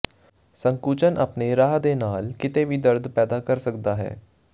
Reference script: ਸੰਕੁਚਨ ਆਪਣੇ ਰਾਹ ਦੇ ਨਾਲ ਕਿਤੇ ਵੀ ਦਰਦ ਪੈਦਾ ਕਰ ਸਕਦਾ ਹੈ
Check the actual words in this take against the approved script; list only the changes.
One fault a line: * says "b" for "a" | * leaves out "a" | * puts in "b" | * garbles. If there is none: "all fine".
all fine